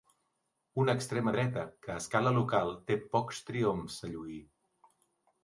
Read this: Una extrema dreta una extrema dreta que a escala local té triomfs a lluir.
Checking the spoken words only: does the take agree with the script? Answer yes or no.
no